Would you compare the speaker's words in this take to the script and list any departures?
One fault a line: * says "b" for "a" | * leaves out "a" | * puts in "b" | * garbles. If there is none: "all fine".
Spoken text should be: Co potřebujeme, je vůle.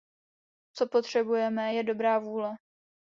* puts in "dobrá"